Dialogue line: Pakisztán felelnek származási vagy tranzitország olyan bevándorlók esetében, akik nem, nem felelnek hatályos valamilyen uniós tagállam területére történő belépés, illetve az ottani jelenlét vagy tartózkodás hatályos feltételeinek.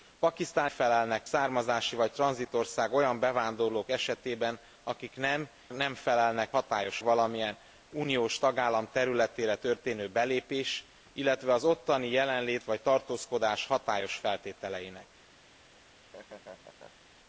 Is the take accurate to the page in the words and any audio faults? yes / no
no